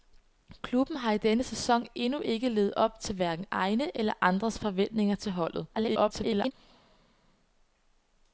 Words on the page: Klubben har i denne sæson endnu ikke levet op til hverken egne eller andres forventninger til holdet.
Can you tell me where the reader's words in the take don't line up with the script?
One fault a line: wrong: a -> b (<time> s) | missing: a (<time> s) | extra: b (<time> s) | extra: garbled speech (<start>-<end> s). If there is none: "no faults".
extra: garbled speech (5.7-6.5 s)